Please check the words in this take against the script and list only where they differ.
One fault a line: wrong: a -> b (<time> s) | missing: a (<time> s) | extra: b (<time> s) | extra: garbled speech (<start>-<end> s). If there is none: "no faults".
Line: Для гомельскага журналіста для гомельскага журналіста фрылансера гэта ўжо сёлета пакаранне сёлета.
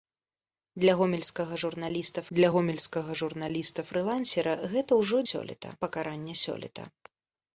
no faults